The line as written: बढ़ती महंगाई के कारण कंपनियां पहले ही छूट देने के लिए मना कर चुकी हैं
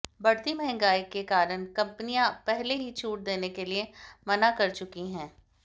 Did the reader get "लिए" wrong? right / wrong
right